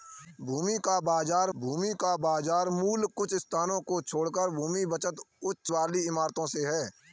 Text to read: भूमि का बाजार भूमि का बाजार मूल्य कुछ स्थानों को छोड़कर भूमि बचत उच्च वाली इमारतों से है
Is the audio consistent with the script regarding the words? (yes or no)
yes